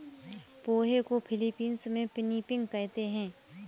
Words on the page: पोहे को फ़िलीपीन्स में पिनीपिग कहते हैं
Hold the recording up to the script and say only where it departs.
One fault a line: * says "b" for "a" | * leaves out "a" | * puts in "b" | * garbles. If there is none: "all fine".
all fine